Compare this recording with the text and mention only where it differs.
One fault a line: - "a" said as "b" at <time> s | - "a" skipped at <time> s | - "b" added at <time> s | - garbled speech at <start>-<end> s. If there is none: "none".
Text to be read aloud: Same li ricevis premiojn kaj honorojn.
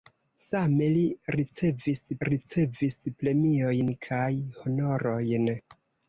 - "ricevis" added at 2.3 s